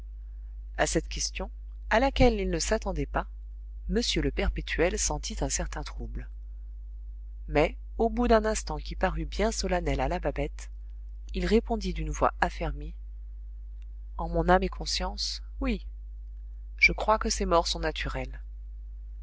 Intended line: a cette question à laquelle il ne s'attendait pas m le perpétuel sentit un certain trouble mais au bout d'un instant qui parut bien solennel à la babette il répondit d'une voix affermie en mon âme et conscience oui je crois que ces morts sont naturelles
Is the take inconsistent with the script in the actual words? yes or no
no